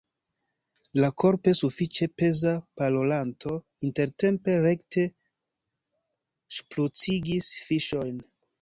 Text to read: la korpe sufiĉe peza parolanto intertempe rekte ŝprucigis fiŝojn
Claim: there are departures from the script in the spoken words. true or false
false